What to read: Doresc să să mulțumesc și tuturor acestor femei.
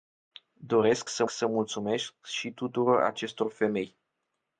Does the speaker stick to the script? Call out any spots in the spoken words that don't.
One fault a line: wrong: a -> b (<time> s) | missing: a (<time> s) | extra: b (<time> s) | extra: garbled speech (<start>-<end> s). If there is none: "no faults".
no faults